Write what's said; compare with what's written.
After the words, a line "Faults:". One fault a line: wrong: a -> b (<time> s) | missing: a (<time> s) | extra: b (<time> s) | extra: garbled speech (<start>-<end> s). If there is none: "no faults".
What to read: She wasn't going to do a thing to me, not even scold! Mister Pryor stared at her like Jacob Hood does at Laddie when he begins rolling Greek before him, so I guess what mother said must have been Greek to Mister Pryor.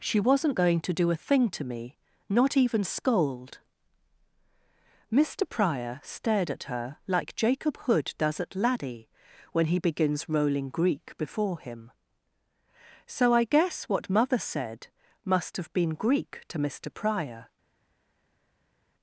She wasn't going to do a thing to me, not even scold! Mister Pryor stared at her like Jacob Hood does at Laddie when he begins rolling Greek before him, so I guess what mother said must have been Greek to Mister Pryor.
Faults:
no faults